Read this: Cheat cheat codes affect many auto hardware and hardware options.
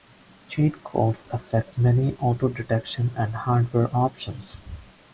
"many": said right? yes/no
yes